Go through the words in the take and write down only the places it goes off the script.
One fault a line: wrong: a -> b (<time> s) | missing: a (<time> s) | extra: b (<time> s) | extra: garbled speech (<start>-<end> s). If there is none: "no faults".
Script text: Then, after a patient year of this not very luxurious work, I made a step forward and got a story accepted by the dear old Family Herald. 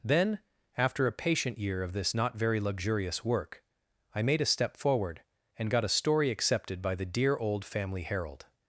no faults